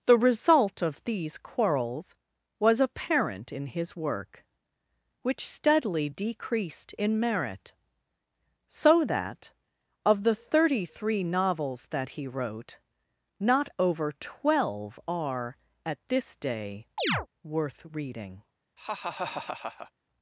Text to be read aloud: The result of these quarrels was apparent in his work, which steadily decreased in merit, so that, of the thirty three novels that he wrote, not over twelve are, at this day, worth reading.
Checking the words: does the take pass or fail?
pass